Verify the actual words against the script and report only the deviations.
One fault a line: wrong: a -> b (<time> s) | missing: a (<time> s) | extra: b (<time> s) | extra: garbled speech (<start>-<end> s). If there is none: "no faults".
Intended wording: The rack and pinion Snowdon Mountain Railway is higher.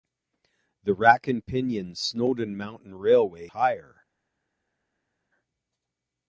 missing: is (3.5 s)